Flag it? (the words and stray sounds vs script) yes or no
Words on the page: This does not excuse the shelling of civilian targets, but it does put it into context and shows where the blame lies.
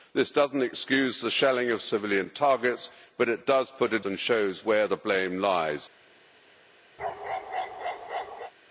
yes